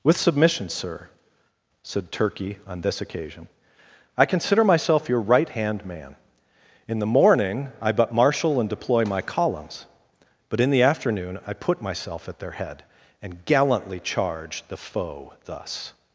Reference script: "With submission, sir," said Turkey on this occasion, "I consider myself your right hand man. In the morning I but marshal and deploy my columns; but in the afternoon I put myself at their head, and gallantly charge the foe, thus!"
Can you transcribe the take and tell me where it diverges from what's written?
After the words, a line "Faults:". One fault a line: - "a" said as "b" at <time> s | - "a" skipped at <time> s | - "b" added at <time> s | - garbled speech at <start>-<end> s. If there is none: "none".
"With submission, sir," said Turkey on this occasion, "I consider myself your right hand man. In the morning I but marshal and deploy my columns; but in the afternoon I put myself at their head, and gallantly charge the foe, thus!"
Faults:
none